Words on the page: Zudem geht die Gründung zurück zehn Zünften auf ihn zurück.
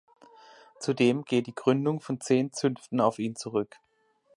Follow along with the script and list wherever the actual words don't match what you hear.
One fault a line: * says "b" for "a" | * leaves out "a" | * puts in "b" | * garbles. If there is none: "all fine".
* says "von" for "zurück"